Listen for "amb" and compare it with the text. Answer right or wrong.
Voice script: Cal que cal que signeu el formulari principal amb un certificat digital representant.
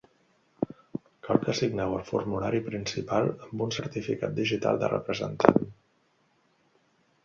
right